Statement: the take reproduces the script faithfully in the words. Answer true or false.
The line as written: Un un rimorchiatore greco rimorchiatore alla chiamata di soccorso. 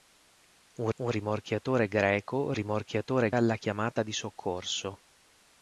true